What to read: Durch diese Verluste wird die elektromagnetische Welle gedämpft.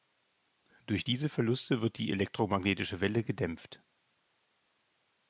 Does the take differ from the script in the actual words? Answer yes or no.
no